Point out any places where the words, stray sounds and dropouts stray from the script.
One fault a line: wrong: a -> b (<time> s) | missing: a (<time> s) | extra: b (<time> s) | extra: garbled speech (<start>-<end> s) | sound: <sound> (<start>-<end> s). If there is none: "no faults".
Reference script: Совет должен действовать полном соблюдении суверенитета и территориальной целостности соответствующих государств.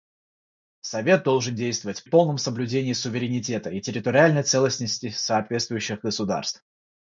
no faults